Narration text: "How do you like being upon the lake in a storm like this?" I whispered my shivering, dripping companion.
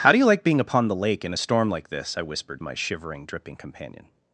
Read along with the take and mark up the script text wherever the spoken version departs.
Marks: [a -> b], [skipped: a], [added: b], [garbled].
"How do you like being upon the lake in a storm like this?" I whispered my shivering, dripping companion.